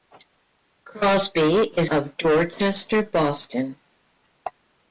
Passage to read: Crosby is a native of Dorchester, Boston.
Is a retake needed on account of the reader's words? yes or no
yes